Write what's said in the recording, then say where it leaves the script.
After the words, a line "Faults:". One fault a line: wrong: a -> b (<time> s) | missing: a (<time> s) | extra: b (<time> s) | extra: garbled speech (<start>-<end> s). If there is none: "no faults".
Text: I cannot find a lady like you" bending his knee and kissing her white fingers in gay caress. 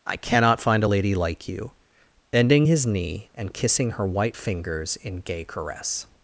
I cannot find a lady like you" bending his knee and kissing her white fingers in gay caress.
Faults:
no faults